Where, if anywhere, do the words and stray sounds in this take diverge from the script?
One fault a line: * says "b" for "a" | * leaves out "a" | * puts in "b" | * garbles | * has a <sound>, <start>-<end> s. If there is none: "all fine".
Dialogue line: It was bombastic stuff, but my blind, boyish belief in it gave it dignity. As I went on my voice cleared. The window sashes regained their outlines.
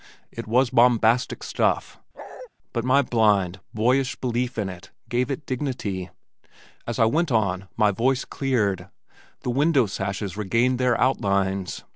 * has a bark, 2.1-2.5 s